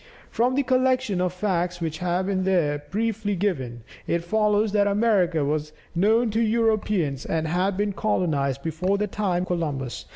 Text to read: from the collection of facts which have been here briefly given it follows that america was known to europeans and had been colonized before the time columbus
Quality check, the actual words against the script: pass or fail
pass